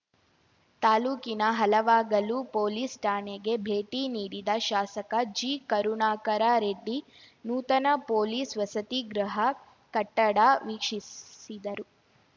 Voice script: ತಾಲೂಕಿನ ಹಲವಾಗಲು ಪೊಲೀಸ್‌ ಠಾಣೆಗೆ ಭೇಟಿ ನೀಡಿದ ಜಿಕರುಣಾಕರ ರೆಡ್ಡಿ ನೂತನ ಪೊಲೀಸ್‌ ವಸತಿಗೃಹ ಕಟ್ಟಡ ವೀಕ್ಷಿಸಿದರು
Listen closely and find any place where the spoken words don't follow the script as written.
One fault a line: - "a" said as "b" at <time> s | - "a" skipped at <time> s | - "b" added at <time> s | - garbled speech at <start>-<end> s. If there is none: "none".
- "ಶಾಸಕ" added at 4.7 s